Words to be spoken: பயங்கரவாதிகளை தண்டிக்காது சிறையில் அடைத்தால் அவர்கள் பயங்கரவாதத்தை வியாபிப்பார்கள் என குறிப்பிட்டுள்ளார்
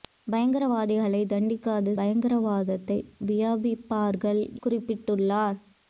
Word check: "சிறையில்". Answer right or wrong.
wrong